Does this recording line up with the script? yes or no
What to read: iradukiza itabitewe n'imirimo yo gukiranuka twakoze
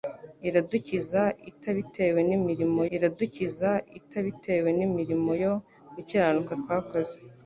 no